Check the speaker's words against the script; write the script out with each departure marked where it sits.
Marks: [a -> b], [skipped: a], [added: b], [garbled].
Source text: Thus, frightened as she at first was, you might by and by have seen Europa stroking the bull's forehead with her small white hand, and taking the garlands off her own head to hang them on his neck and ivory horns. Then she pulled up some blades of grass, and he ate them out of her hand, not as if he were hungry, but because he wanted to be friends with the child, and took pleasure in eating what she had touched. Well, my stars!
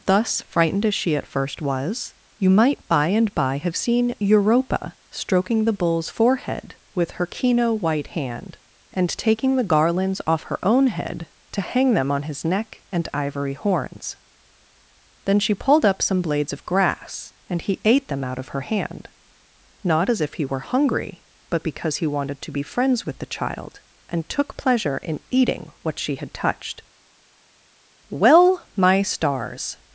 Thus, frightened as she at first was, you might by and by have seen Europa stroking the bull's forehead with her [small -> kino] white hand, and taking the garlands off her own head to hang them on his neck and ivory horns. Then she pulled up some blades of grass, and he ate them out of her hand, not as if he were hungry, but because he wanted to be friends with the child, and took pleasure in eating what she had touched. Well, my stars!